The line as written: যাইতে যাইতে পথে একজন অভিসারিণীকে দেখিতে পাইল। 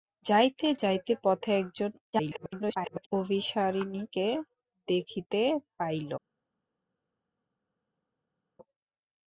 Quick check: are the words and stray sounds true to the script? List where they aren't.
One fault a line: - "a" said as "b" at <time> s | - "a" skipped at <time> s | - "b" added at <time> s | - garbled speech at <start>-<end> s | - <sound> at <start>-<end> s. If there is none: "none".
- garbled speech at 2.1-3.1 s